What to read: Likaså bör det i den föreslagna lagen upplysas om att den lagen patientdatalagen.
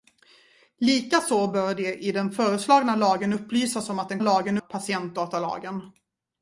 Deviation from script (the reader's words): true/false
false